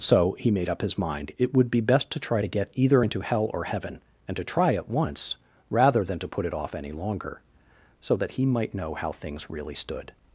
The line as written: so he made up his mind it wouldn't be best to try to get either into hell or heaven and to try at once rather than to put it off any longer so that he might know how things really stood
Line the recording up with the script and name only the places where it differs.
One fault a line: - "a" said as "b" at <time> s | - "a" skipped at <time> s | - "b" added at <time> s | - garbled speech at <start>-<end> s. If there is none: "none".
- "wouldn't" said as "would" at 1.5 s